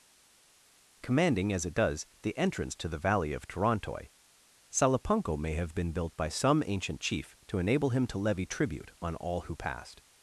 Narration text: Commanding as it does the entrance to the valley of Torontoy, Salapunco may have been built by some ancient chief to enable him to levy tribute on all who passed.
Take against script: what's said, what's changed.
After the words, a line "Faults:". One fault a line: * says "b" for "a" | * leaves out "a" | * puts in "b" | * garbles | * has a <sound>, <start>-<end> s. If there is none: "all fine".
Commanding as it does the entrance to the valley of Torontoy, Salapunco may have been built by some ancient chief to enable him to levy tribute on all who passed.
Faults:
all fine